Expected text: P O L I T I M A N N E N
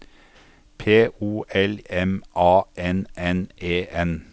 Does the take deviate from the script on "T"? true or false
true